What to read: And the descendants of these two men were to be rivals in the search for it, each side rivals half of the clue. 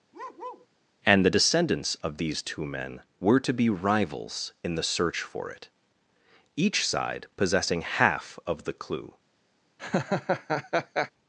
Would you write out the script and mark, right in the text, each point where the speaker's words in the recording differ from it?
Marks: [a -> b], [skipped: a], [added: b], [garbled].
And the descendants of these two men were to be rivals in the search for it, each side [rivals -> possessing] half of the clue.